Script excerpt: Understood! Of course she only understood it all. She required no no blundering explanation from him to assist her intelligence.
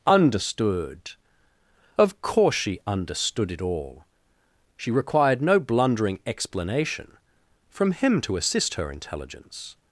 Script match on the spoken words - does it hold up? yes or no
no